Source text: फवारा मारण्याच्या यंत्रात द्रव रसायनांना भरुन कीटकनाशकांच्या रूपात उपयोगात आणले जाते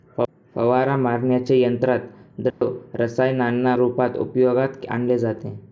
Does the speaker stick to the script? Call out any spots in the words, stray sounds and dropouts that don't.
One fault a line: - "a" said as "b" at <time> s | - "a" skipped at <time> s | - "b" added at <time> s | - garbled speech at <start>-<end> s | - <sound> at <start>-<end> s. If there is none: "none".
- dropout at 2.5-2.6 s
- "भरुन कीटकनाशकांच्या" skipped at 3.8 s